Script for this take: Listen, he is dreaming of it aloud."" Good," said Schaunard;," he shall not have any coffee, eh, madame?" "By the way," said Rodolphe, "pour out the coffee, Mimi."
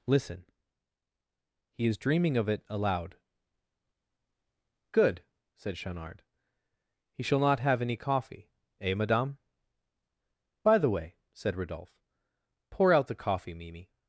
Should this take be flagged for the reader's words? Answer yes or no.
no